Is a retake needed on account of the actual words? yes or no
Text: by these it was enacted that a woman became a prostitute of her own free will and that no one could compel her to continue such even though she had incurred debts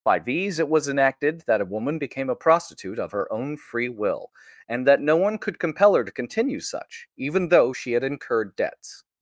no